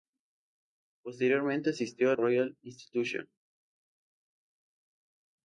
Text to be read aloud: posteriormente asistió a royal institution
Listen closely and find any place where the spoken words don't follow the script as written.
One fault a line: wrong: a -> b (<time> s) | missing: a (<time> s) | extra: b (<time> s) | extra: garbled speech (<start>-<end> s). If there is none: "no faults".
no faults